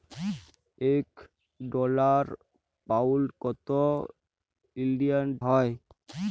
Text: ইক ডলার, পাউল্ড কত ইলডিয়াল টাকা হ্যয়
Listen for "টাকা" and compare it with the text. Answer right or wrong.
wrong